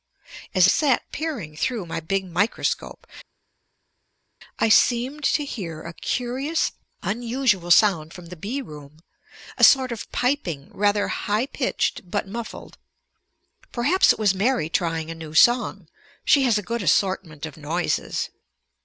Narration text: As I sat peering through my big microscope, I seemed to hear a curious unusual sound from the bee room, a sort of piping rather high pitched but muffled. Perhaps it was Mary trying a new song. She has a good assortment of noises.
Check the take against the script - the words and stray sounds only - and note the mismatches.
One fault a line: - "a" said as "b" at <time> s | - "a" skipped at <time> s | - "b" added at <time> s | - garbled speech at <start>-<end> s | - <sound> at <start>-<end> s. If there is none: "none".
- "I" skipped at 0.7 s